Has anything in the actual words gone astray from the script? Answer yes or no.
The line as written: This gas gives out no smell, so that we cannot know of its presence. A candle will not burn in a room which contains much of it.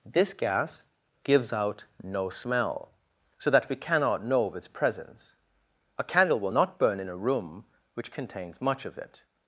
no